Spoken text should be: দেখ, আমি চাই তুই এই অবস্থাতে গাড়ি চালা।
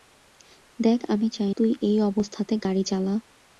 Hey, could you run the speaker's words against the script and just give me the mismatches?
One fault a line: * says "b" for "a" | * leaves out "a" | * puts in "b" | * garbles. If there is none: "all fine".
all fine